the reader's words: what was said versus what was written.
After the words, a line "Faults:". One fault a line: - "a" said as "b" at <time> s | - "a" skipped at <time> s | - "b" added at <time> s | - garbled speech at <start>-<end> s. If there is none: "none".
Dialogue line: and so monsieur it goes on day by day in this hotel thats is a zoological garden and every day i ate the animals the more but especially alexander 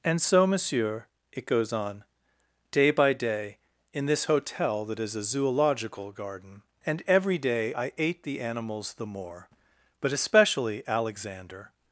and so monsieur it goes on day by day in this hotel that is a zoological garden and every day i ate the animals the more but especially alexander
Faults:
- "thats" said as "that" at 4.9 s